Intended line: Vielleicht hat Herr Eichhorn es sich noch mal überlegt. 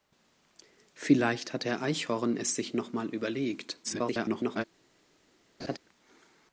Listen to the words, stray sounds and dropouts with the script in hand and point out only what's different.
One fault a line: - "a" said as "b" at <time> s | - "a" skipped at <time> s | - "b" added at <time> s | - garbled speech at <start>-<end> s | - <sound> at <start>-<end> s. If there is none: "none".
- garbled speech at 3.8-4.6 s
- laugh at 5.6-5.8 s